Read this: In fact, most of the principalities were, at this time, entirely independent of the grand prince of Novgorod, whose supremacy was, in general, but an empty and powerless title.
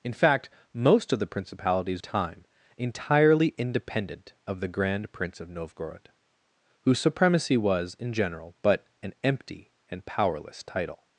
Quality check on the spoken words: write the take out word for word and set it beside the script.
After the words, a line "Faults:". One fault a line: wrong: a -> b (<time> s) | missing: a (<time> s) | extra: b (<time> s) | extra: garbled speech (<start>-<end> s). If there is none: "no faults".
In fact, most of the principalities time, entirely independent of the grand prince of Novgorod, whose supremacy was, in general, but an empty and powerless title.
Faults:
missing: were at this (2.0 s)